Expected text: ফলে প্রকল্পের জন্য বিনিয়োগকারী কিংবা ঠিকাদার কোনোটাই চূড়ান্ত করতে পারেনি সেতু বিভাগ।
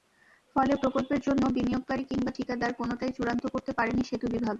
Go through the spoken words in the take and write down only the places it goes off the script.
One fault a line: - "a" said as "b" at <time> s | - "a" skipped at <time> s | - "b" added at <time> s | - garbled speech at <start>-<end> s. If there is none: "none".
none